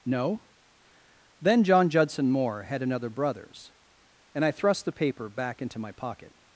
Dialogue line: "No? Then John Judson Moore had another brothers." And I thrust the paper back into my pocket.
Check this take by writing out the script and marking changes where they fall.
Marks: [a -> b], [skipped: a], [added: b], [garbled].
"No? Then John Judson Moore had another brothers." And I thrust the paper back into my pocket.